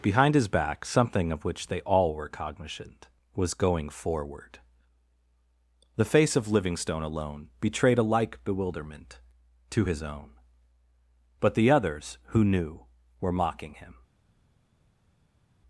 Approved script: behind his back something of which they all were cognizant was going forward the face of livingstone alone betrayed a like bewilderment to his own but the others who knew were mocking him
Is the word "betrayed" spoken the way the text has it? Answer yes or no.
yes